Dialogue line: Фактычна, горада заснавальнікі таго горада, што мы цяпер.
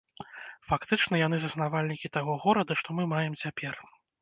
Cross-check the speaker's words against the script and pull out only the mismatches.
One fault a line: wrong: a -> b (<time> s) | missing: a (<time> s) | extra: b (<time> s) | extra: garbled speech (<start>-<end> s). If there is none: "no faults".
wrong: горада -> яны (1.2 s)
extra: маем (3.2 s)